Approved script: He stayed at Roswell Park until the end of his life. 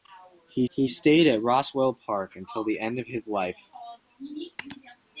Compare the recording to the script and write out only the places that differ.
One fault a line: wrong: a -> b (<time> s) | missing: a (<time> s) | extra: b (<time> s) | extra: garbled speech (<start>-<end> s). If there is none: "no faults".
extra: he (0.7 s)